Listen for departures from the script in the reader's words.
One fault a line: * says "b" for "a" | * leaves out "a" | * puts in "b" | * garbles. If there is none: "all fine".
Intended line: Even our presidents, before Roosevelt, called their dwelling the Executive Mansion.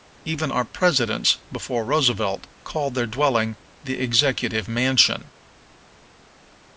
all fine